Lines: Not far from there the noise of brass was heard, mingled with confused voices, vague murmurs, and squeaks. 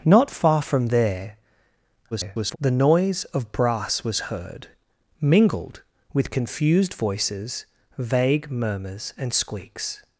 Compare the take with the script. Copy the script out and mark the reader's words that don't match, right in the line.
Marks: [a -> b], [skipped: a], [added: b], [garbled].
Not far from there [garbled] the noise of brass was heard, mingled with confused voices, vague murmurs, and squeaks.